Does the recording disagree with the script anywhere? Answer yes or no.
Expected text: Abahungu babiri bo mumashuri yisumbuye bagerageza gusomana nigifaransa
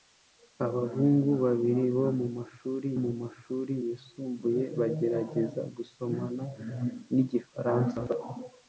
yes